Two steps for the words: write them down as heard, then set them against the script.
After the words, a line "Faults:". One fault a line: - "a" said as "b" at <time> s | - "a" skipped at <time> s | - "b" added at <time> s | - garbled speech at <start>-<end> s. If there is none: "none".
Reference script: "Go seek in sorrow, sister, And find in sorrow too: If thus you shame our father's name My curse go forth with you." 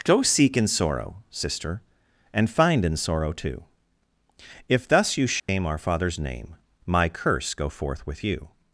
"Go seek in sorrow, sister, And find in sorrow too: If thus you shame our father's name My curse go forth with you."
Faults:
none